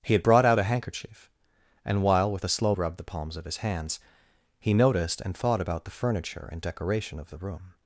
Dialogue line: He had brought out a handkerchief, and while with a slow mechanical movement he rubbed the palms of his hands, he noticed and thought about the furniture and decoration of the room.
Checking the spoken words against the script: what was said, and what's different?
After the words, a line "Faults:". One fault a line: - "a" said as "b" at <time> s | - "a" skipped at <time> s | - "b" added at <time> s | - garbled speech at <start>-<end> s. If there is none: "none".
He had brought out a handkerchief, and while with a slow rubbed the palms of his hands, he noticed and thought about the furniture and decoration of the room.
Faults:
- "mechanical movement he" skipped at 2.7 s